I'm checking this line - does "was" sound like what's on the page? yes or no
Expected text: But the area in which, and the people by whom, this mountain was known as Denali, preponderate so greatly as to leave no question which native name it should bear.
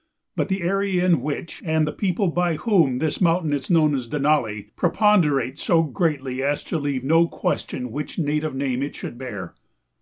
no